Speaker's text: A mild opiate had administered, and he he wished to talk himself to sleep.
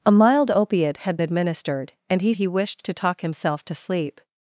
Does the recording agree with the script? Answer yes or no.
yes